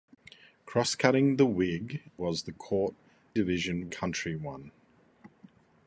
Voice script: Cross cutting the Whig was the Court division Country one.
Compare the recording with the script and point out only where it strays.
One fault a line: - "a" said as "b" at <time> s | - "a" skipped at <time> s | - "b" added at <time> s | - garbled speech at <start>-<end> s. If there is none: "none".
none